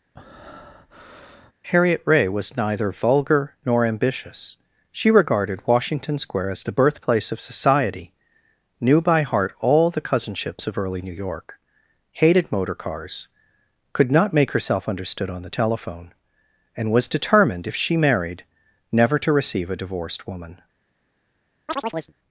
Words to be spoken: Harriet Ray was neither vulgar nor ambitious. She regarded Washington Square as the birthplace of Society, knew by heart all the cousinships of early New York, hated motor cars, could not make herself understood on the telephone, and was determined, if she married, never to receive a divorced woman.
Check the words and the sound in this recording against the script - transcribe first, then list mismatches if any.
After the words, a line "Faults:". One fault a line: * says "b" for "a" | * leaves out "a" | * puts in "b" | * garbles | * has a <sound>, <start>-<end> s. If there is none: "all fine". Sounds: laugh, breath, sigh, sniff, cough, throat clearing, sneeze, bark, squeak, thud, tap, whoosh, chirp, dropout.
Harriet Ray was neither vulgar nor ambitious. She regarded Washington Square as the birthplace of Society, knew by heart all the cousinships of early New York, hated motor cars, could not make herself understood on the telephone, and was determined, if she married, never to receive a divorced woman.
Faults:
* has a breath, 0.1-1.5 s
* has a chirp, 21.7-22.1 s